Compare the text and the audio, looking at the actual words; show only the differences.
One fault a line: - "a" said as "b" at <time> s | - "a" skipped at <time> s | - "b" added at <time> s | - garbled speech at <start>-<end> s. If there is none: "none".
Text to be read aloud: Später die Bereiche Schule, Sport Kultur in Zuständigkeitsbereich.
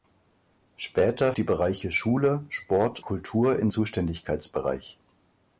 none